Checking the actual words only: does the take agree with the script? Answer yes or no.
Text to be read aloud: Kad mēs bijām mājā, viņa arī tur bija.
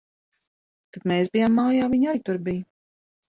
yes